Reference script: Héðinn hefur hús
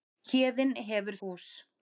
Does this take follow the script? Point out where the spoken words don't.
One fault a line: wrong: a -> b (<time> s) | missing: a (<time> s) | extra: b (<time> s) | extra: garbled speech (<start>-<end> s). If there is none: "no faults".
no faults